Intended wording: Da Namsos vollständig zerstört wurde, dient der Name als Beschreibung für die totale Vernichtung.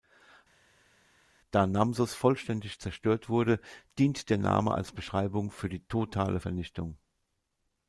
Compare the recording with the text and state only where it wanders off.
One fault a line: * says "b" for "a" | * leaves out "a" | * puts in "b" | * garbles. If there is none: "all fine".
all fine